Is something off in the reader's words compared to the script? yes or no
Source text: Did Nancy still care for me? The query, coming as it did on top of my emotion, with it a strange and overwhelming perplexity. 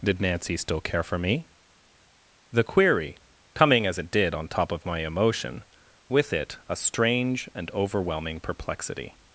no